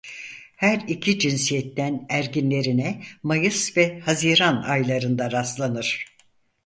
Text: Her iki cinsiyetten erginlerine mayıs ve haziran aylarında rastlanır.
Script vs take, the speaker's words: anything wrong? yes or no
no